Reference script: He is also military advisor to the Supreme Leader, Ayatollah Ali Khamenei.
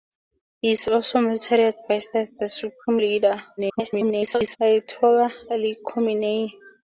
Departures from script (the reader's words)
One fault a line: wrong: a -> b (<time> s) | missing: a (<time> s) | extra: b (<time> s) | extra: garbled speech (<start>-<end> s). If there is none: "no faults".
extra: garbled speech (3.6-4.6 s)